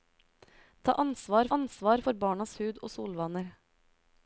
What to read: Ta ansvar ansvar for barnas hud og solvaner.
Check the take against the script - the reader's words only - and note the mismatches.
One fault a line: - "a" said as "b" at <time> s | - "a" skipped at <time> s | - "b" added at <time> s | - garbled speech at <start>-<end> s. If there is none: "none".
none